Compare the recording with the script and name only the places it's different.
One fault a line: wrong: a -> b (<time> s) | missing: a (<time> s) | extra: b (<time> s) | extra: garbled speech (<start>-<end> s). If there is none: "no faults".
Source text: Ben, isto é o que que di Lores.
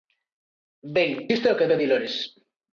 no faults